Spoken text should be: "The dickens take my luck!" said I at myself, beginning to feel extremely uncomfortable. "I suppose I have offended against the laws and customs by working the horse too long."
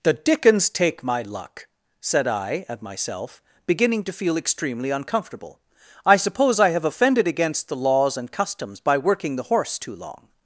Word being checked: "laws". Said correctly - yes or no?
yes